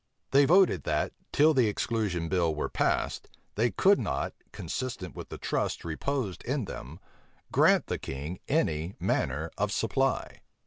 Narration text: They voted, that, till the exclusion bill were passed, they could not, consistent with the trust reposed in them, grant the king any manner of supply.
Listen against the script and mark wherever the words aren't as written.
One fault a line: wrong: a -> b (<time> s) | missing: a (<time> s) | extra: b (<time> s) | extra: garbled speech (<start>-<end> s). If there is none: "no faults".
no faults